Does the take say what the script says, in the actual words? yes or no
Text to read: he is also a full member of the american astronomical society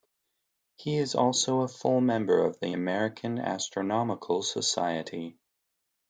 yes